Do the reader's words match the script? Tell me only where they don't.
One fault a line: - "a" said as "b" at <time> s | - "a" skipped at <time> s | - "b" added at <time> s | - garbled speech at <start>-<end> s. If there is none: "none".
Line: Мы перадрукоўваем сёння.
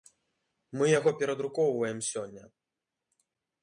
- "яго" added at 1.0 s